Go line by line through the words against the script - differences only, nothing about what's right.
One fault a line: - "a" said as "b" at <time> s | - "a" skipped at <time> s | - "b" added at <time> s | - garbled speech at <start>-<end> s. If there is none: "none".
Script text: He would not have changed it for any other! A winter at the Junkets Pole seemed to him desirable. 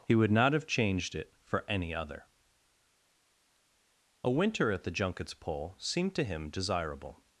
none